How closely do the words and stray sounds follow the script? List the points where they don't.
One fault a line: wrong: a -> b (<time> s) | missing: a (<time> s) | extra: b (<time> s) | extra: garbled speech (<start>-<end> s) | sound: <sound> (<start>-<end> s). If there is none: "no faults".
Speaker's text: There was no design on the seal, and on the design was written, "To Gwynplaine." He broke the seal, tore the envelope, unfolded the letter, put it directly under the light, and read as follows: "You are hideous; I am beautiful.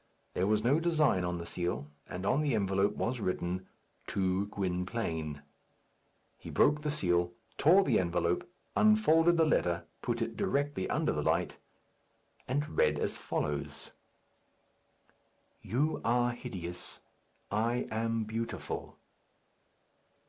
wrong: design -> envelope (2.6 s)